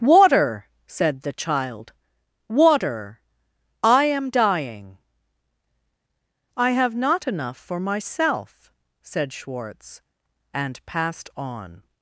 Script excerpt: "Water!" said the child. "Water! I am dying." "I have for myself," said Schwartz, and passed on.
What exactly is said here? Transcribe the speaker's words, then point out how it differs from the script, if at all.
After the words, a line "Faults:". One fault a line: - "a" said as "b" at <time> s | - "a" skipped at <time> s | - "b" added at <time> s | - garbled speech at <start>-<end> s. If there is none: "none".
"Water!" said the child. "Water! I am dying." "I have not enough for myself," said Schwartz, and passed on.
Faults:
- "not enough" added at 7.0 s